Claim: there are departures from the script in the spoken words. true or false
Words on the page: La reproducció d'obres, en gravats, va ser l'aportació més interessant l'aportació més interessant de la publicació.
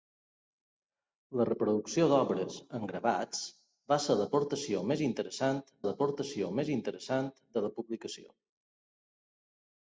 false